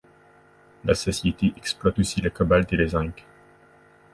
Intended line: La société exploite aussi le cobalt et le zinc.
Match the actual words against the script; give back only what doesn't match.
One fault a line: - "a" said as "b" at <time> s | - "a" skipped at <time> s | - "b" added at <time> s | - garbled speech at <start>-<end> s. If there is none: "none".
none